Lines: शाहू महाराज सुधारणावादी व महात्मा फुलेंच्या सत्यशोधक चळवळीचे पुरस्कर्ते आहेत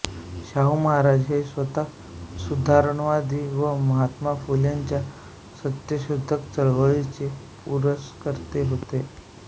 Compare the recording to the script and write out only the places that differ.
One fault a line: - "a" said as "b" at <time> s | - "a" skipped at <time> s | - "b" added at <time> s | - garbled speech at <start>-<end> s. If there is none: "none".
- "हे स्वतः" added at 1.3 s
- "आहेत" said as "होते" at 8.7 s